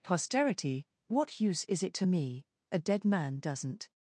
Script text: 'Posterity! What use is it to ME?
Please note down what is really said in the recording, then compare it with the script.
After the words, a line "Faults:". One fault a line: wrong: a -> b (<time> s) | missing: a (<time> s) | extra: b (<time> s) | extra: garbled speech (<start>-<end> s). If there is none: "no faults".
'Posterity! What use is it to ME? A dead man doesn't
Faults:
extra: A dead man doesn't (2.7 s)